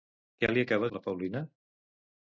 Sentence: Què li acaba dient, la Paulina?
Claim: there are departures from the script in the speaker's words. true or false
true